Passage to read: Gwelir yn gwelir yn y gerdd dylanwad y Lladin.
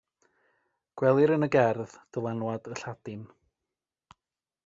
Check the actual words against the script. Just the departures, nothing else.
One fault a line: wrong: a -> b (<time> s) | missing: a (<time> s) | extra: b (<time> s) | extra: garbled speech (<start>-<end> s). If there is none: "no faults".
missing: gwelir yn (1.5 s)